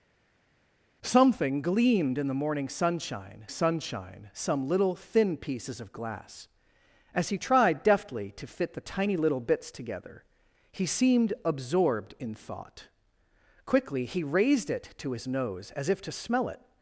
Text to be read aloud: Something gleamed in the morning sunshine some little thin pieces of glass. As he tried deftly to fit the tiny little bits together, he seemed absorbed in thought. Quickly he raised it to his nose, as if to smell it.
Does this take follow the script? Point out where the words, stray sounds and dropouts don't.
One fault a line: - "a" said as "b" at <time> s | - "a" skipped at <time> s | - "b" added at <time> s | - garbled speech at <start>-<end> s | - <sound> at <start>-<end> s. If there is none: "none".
- "sunshine" added at 3.5 s